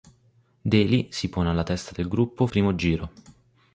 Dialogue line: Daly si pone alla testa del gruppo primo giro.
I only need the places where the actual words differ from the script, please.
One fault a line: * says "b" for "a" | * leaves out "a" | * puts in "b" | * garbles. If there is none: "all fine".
all fine